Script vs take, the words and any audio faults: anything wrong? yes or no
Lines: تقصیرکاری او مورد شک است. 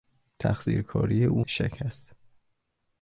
yes